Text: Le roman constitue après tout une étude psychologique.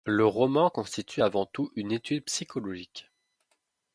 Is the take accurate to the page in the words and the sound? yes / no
no